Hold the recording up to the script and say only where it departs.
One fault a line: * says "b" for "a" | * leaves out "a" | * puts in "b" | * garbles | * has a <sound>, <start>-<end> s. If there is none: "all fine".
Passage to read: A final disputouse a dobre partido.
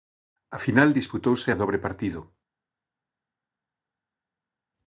all fine